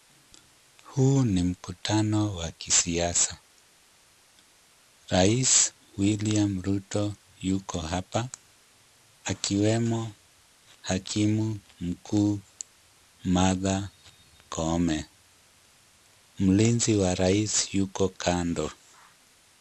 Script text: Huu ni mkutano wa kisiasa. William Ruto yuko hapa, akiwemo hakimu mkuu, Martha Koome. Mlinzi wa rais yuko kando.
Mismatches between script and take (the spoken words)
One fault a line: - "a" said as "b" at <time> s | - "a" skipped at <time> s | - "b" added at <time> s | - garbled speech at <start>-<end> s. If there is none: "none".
- "Rais" added at 5.1 s